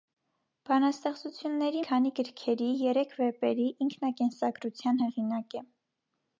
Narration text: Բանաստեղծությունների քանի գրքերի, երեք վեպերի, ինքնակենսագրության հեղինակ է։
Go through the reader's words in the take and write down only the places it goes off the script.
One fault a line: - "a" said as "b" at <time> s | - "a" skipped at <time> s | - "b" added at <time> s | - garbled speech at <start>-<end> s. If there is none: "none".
none